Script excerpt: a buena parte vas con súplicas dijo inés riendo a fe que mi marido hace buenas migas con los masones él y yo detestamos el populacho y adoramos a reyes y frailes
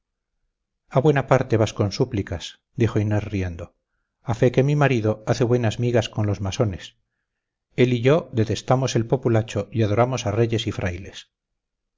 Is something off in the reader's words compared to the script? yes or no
no